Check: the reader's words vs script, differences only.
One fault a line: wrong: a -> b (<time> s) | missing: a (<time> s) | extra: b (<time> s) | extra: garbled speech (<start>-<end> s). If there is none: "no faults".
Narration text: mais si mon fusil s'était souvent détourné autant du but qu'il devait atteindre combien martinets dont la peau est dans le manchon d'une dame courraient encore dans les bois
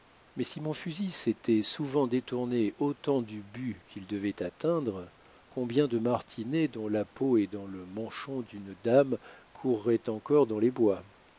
extra: de (5.9 s)